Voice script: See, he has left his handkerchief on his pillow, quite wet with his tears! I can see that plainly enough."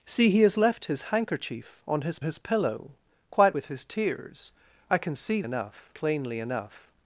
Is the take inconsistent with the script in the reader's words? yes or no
yes